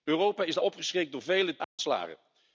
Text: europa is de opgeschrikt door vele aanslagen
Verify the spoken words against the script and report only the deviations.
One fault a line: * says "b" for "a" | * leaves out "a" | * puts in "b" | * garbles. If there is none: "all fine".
all fine